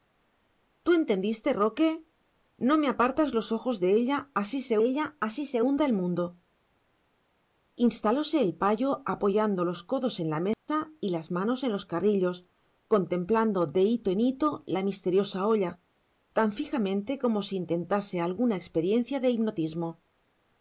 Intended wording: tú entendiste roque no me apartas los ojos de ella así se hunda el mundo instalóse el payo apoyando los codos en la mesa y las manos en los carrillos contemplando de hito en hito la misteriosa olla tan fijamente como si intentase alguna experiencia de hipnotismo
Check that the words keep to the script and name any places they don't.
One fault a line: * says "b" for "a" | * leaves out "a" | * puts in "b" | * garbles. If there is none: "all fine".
* puts in "ella así se"